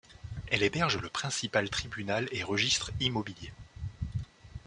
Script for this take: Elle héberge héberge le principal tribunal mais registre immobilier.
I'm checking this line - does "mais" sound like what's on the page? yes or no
no